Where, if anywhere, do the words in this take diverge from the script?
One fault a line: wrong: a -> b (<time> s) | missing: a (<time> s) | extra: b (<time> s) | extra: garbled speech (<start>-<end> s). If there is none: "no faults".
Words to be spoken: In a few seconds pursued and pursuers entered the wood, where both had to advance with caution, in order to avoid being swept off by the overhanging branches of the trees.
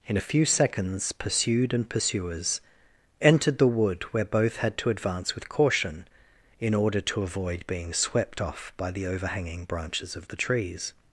no faults